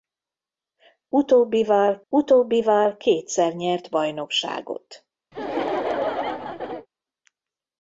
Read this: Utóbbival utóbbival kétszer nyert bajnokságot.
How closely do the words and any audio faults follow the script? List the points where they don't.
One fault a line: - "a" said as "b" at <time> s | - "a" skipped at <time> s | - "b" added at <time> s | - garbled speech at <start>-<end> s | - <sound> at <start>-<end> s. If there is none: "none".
- laugh at 5.3-6.9 s